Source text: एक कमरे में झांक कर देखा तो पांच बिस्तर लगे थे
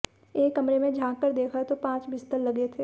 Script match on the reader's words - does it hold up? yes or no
yes